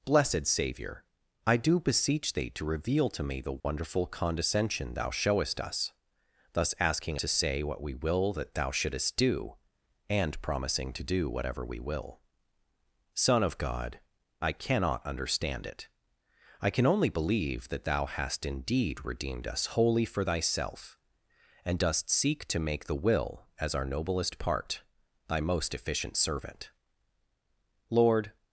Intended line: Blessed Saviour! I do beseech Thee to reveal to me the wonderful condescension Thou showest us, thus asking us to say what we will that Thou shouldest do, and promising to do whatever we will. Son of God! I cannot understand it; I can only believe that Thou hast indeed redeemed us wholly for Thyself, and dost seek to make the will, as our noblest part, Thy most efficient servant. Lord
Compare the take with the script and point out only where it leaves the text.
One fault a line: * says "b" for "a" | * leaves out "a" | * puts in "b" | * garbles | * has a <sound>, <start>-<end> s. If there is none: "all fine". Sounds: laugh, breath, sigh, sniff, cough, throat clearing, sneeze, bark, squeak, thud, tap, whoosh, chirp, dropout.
* has a dropout, 3.6-3.6 s
* leaves out "us"